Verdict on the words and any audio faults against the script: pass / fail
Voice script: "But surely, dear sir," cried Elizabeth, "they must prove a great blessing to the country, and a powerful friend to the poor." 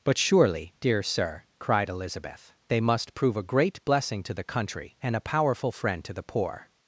pass